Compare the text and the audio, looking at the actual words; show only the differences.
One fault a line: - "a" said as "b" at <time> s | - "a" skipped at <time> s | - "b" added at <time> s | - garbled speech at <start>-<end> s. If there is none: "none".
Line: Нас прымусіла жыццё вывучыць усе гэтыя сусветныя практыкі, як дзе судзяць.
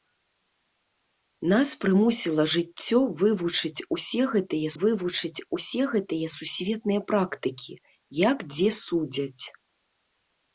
- "вывучыць усе гэтыя" added at 4.8 s